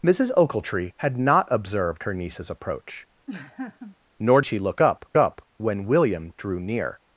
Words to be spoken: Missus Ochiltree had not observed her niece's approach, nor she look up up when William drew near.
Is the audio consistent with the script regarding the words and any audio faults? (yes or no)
no